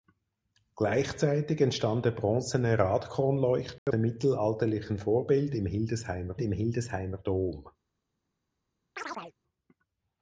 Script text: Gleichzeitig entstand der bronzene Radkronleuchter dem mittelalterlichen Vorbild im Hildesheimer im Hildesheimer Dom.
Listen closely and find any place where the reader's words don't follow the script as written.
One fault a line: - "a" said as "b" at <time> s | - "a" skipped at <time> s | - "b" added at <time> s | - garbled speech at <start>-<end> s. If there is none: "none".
none